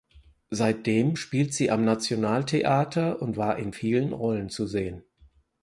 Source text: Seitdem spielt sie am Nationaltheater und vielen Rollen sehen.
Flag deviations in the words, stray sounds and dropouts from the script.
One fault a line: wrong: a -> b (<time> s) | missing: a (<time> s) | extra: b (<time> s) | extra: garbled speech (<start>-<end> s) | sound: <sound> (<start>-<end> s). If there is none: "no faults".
extra: war in (3.4 s)
extra: zu (4.5 s)